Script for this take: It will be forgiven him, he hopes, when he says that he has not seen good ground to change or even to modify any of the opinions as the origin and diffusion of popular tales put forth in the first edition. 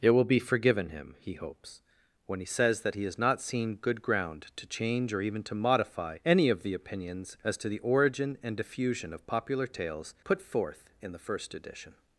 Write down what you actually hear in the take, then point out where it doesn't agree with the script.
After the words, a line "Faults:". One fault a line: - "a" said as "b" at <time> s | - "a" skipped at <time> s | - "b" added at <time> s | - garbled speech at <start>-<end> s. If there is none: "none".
It will be forgiven him, he hopes, when he says that he has not seen good ground to change or even to modify any of the opinions as to the origin and diffusion of popular tales put forth in the first edition.
Faults:
- "to" added at 7.6 s